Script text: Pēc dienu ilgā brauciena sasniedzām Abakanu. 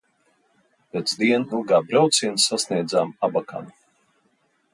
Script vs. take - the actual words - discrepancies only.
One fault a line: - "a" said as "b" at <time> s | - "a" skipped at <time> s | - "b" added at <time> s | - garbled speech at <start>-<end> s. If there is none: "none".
none